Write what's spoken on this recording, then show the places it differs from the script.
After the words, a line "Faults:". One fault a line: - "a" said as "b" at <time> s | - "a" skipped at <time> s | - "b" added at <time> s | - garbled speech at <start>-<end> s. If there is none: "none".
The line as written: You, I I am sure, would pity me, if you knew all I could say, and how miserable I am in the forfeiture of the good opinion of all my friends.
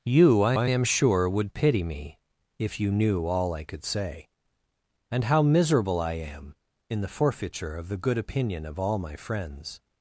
You, I I am sure, would pity me, if you knew all I could say, and how miserable I am in the forfeiture of the good opinion of all my friends.
Faults:
none